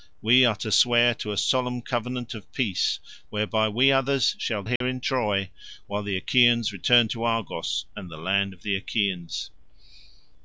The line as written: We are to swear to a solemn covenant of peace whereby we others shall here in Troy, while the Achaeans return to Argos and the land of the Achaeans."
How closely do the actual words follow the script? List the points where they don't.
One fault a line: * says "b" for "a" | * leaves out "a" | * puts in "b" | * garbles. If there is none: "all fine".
all fine